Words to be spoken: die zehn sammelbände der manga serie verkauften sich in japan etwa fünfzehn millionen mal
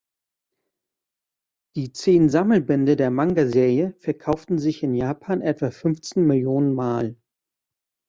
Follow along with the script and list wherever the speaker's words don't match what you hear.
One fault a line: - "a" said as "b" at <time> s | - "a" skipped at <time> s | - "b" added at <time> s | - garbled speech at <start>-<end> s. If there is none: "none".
none